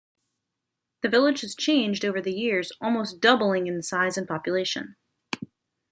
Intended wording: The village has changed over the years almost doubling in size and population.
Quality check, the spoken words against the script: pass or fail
pass